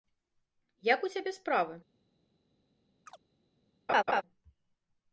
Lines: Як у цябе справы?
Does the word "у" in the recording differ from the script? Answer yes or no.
no